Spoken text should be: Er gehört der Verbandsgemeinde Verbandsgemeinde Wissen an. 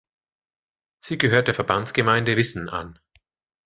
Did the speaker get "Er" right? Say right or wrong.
wrong